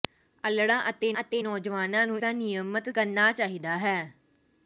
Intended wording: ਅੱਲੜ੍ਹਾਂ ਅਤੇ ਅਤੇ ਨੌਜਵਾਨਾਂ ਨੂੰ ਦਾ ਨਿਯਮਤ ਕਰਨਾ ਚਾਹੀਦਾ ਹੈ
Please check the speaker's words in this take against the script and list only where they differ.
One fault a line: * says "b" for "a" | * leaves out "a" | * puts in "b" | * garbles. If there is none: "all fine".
all fine